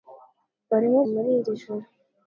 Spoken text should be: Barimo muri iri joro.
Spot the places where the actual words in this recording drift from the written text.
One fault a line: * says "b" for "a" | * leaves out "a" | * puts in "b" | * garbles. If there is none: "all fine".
all fine